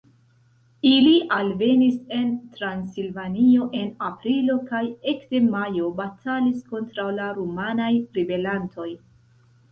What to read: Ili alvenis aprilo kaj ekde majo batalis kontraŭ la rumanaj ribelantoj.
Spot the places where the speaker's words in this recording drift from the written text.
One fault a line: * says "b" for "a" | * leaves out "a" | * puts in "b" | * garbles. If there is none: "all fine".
* puts in "en Transilvanio en"